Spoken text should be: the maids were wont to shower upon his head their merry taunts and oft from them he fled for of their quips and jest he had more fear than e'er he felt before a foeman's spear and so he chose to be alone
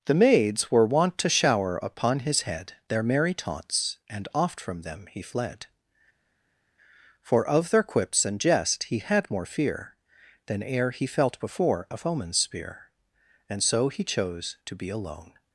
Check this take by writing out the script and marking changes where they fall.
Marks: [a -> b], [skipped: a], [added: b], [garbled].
the maids were wont to shower upon his head their merry taunts and oft from them he fled for of their quips and jest he had more fear than e'er he felt before a foeman's spear and so he chose to be alone